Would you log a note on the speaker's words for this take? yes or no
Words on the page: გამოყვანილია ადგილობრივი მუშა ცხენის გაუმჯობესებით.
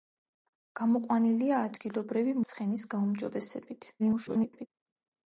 yes